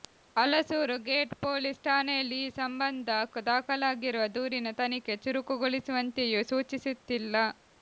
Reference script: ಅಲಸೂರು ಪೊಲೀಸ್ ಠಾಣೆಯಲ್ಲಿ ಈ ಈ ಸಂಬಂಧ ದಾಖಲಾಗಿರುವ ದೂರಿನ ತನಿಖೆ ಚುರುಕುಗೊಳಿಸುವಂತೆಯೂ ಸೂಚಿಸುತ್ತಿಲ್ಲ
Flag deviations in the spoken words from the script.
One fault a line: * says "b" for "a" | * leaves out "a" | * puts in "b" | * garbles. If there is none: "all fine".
* puts in "ಗೇಟ್"
* leaves out "ಈ"